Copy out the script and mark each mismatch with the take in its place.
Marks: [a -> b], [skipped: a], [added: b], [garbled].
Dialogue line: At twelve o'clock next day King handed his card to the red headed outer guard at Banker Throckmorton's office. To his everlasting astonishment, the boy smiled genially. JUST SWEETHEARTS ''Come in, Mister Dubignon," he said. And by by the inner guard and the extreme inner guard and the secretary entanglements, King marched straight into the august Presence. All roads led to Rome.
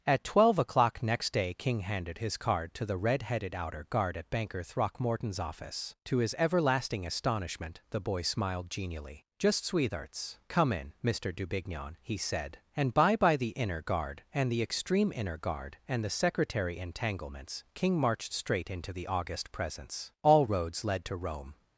At twelve o'clock next day King handed his card to the red headed outer guard at Banker Throckmorton's office. To his everlasting astonishment, the boy smiled genially. JUST SWEETHEARTS ''Come in, Mister Dubignon," he said. And by by the inner guard and the extreme inner guard and the secretary entanglements, King marched straight into the august Presence. All roads led to Rome.